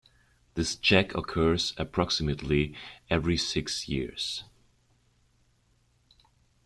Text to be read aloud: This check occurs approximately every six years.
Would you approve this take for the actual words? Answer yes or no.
yes